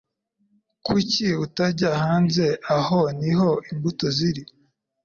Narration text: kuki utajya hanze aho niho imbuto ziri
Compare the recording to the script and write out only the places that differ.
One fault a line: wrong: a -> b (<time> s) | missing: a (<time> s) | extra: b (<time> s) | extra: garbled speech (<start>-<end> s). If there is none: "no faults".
no faults